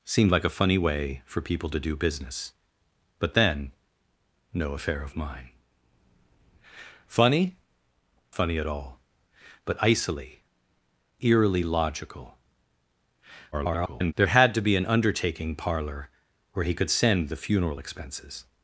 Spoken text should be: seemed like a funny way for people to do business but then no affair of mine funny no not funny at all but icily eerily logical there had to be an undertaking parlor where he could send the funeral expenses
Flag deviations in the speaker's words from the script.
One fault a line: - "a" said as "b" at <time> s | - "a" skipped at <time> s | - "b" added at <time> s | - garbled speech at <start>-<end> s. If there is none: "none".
- "no not" skipped at 7.6 s
- garbled speech at 13.5-14.1 s